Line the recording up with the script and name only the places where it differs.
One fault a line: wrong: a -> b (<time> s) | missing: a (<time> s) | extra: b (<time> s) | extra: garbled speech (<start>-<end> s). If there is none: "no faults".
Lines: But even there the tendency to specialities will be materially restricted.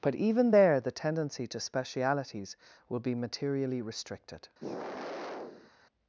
no faults